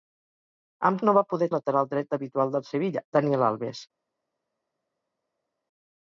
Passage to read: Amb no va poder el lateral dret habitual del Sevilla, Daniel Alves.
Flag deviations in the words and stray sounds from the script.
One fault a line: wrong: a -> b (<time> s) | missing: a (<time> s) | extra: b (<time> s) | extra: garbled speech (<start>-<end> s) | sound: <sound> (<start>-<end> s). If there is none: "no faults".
no faults